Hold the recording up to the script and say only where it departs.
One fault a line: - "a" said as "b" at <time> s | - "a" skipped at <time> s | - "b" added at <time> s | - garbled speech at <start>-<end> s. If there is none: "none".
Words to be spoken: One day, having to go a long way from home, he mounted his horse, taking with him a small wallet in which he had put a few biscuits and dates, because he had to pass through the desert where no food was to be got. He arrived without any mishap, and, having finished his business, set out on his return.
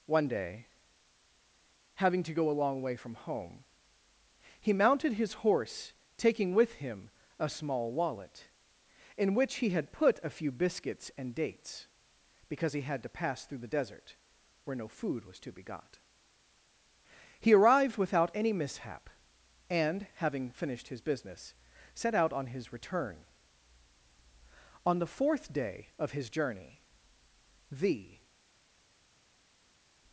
- "On the fourth day of his journey the" added at 24.9 s